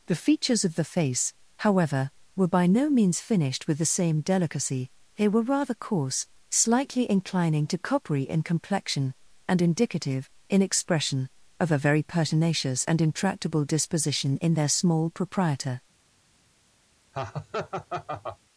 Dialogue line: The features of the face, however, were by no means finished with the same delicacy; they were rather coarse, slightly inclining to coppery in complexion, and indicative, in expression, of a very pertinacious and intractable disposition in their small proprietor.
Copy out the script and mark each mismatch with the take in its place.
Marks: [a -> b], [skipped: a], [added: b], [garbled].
The features of the face, however, were by no means finished with the same delicacy; they were rather coarse, slightly inclining to coppery in complexion, and indicative, in expression, of a very pertinacious and intractable disposition in their small proprietor.